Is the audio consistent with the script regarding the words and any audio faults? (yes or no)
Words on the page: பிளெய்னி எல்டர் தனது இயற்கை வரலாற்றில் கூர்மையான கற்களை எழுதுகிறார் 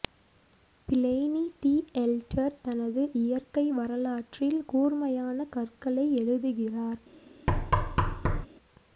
no